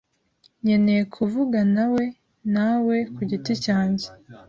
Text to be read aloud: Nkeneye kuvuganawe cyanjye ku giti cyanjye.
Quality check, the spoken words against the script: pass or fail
fail